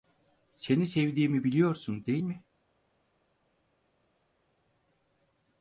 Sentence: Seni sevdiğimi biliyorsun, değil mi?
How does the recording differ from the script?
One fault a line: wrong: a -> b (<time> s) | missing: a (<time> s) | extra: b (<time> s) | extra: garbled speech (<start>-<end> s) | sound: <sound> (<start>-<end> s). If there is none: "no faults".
no faults